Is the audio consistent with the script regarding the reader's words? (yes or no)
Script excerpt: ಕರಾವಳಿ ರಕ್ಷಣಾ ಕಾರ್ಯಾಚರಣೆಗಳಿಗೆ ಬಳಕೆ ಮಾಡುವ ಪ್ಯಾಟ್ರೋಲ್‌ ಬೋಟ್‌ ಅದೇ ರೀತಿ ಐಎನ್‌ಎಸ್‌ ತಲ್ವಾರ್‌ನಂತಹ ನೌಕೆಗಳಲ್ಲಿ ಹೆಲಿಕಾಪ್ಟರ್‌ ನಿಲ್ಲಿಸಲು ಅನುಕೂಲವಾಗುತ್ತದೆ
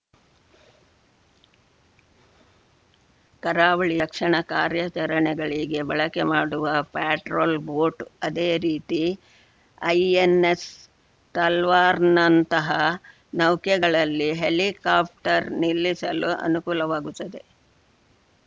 yes